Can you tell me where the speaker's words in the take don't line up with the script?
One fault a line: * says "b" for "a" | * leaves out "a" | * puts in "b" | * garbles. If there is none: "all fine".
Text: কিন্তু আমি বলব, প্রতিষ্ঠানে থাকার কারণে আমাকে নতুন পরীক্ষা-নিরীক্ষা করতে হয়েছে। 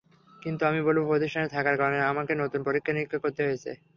all fine